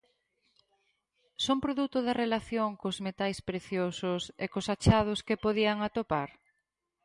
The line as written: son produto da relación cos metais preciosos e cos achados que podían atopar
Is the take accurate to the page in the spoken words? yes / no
yes